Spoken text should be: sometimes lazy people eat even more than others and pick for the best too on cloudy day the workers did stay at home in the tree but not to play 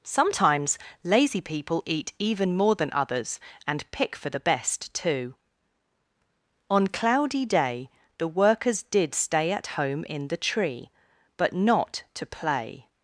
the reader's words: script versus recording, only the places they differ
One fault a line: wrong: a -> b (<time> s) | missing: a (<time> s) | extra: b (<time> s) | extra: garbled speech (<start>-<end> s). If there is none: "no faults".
no faults